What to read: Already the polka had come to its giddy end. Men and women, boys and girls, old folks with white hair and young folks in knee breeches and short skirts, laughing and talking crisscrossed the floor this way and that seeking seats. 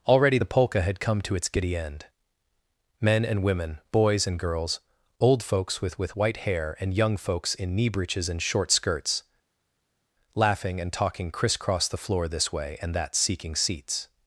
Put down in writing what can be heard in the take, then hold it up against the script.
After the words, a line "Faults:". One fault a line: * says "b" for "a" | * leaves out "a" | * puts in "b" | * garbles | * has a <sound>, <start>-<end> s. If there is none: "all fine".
Already the polka had come to its giddy end. Men and women, boys and girls, old folks with with white hair and young folks in knee breeches and short skirts, laughing and talking crisscrossed the floor this way and that seeking seats.
Faults:
* puts in "with"